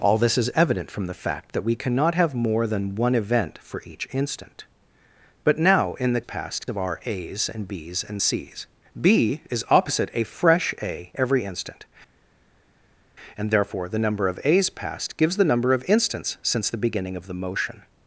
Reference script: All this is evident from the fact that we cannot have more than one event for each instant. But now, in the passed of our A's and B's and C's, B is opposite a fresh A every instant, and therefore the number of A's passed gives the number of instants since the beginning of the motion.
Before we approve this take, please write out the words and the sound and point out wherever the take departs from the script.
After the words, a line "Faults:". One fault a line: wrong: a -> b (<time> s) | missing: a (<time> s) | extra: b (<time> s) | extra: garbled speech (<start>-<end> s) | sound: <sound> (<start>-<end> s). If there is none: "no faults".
All this is evident from the fact that we cannot have more than one event for each instant. But now, in the passed of our A's and B's and C's, B is opposite a fresh A every instant, and therefore the number of A's passed gives the number of instants since the beginning of the motion.
Faults:
no faults